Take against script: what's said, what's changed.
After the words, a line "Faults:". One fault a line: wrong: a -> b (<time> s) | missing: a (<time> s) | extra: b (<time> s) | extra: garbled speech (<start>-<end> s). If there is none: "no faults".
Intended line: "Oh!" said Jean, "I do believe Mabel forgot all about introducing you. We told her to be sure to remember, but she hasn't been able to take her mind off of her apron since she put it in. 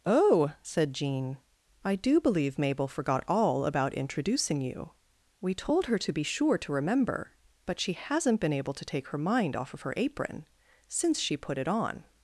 "Oh!" said Jean, "I do believe Mabel forgot all about introducing you. We told her to be sure to remember, but she hasn't been able to take her mind off of her apron since she put it on.
Faults:
wrong: in -> on (11.7 s)